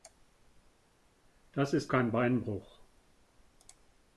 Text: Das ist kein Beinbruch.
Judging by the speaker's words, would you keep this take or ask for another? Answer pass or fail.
pass